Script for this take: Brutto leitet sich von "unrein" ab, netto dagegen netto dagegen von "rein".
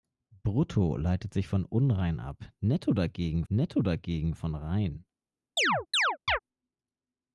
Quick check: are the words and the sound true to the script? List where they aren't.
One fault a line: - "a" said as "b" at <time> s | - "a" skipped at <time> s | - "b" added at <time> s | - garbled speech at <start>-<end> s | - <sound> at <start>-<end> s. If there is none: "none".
- chirp at 5.6-6.4 s